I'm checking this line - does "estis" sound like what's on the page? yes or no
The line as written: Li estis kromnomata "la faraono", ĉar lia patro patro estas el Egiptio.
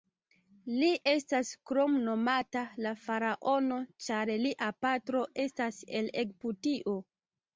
no